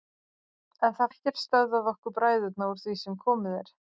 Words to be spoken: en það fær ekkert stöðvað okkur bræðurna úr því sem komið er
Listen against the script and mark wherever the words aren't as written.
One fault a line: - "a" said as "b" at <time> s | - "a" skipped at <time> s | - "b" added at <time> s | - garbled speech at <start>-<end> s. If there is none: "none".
- "fær" skipped at 1.1 s